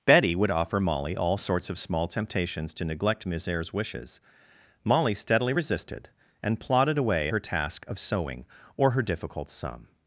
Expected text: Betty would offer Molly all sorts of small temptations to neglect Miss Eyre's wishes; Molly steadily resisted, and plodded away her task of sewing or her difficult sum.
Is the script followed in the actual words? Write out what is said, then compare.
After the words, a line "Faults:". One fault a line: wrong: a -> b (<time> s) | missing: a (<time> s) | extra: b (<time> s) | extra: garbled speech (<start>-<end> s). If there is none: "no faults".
Betty would offer Molly all sorts of small temptations to neglect Miss Eyre's wishes; Molly steadily resisted, and plodded away her task of sewing or her difficult sum.
Faults:
no faults